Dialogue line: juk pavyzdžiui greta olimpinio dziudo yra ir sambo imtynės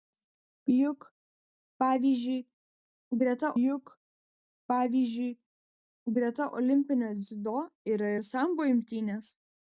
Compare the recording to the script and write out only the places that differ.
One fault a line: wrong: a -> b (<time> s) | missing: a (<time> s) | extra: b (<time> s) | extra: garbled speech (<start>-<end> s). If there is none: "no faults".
extra: juk pavyzdžiui greta (3.6 s)